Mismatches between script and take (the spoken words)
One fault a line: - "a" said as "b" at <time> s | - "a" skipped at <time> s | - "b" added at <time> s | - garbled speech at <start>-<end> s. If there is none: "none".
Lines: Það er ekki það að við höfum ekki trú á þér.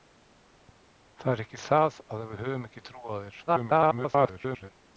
- garbled speech at 3.5-4.7 s